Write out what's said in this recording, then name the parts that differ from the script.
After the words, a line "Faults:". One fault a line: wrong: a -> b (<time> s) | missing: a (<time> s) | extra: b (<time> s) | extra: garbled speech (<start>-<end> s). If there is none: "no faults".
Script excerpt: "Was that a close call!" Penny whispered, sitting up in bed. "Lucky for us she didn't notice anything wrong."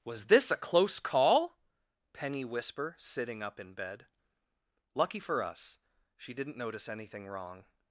"Was this a close call!" Penny whisper, sitting up in bed. "Lucky for us she didn't notice anything wrong."
Faults:
wrong: that -> this (0.2 s)
wrong: whispered -> whisper (2.4 s)